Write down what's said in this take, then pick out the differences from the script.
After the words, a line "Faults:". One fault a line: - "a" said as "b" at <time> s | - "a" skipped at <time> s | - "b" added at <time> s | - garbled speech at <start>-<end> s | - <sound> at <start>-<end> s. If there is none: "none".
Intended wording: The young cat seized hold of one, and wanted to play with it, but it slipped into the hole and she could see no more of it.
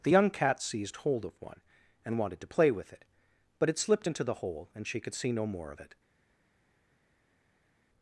The young cat seized hold of one, and wanted to play with it, but it slipped into the hole and she could see no more of it.
Faults:
none